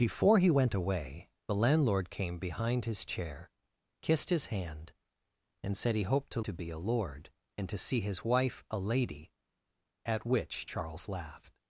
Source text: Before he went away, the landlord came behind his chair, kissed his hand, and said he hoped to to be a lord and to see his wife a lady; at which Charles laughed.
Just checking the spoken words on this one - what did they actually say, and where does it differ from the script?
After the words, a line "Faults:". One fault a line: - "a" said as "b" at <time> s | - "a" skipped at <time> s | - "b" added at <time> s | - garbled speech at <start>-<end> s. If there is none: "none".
Before he went away, the landlord came behind his chair, kissed his hand, and said he hoped to to be a lord and to see his wife a lady; at which Charles laughed.
Faults:
none